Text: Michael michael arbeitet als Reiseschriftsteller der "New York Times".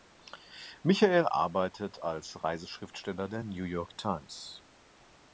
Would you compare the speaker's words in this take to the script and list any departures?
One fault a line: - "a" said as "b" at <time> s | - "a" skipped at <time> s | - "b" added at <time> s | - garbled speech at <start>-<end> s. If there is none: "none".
- "michael" skipped at 1.3 s